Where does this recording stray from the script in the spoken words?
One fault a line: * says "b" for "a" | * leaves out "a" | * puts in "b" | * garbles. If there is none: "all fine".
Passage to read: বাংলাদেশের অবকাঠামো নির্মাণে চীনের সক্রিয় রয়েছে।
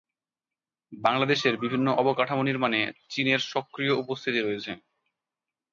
* puts in "বিভিন্ন"
* puts in "উপস্থিতি"